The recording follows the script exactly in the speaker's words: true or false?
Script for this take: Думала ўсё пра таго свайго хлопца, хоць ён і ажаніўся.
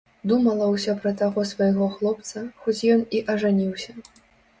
true